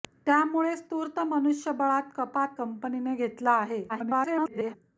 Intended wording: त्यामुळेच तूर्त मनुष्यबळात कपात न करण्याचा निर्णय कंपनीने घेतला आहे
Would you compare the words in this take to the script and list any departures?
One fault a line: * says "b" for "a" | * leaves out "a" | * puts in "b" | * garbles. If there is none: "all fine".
* leaves out "न करण्याचा निर्णय"
* garbles